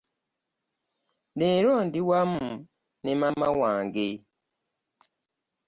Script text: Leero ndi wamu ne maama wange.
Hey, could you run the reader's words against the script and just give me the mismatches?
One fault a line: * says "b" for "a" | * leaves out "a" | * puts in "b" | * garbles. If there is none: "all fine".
all fine